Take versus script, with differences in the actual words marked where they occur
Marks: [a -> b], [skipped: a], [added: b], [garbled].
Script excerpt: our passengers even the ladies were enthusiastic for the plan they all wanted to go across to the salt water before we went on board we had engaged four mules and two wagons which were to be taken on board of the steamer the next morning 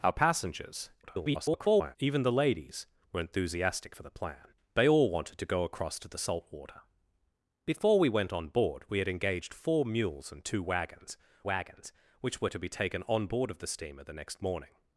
our passengers [garbled] even the ladies were enthusiastic for the plan they all wanted to go across to the salt water before we went on board we had engaged four mules and two wagons [added: wagons] which were to be taken on board of the steamer the next morning